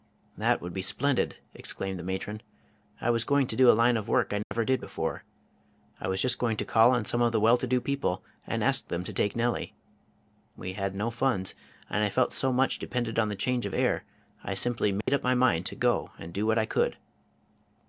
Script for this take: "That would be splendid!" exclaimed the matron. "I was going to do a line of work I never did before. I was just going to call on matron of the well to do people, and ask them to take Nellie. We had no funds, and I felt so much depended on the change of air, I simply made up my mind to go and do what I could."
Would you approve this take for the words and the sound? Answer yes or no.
no